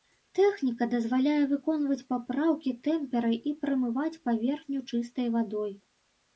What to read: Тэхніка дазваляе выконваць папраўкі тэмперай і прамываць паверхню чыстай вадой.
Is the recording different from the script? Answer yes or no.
no